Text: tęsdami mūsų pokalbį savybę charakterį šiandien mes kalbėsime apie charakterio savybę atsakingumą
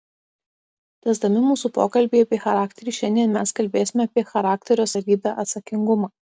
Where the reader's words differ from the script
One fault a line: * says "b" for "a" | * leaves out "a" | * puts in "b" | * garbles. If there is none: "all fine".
* says "apie" for "savybę"